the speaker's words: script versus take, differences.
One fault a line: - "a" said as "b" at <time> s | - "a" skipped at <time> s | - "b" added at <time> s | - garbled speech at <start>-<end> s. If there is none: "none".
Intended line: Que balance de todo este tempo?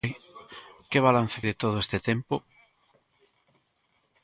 none